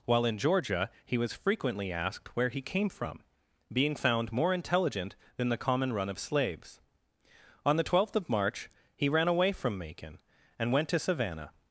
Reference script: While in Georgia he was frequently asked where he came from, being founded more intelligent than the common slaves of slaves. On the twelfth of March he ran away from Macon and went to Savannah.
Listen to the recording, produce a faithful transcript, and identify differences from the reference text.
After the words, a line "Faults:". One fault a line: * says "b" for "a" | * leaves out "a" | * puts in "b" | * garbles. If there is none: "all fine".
While in Georgia he was frequently asked where he came from, being found more intelligent than the common run of slaves. On the twelfth of March he ran away from Macon and went to Savannah.
Faults:
* says "found" for "founded"
* says "run" for "slaves"